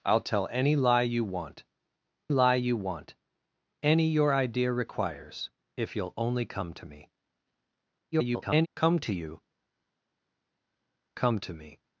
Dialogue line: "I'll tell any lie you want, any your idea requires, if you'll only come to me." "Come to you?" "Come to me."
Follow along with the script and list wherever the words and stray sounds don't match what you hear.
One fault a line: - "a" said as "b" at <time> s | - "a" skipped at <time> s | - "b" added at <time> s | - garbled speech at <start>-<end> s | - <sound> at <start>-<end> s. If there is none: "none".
- "lie you want" added at 2.3 s
- garbled speech at 8.1-8.7 s